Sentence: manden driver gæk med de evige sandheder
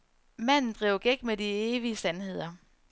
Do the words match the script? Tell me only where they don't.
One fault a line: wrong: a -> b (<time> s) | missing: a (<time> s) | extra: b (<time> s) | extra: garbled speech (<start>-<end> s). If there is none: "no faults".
no faults